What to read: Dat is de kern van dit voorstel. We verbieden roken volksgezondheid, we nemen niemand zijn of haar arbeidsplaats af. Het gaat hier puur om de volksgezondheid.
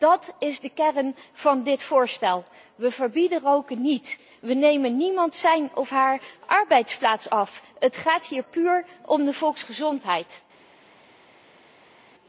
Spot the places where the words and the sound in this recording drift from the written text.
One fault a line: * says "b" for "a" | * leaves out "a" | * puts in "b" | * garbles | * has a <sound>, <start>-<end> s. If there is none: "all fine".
* says "niet" for "volksgezondheid"